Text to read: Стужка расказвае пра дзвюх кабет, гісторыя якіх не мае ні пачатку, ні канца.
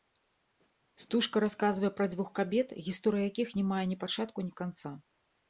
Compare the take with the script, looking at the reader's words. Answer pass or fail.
pass